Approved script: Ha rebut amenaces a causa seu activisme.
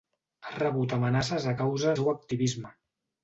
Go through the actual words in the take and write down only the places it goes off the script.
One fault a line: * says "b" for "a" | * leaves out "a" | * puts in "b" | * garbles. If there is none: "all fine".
all fine